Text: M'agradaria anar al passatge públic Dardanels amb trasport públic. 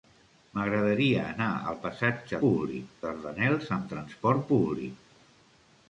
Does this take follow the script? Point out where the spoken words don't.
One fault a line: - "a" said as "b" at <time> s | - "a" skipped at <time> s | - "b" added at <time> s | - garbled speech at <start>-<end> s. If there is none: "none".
none